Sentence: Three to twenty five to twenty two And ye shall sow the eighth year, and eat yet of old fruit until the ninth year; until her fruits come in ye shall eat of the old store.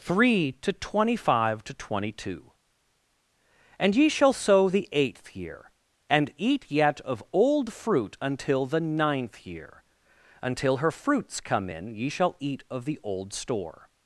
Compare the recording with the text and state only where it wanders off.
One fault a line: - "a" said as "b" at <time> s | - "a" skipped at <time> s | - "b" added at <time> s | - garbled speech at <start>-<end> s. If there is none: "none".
none